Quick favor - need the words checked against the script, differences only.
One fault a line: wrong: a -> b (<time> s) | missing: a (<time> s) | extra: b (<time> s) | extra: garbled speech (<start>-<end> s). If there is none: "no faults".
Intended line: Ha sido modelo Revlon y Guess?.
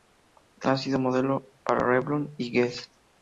extra: para (1.6 s)